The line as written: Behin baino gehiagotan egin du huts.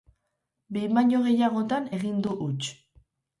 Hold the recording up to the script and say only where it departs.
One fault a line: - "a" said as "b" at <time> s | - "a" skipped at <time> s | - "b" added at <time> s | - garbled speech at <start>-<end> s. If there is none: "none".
none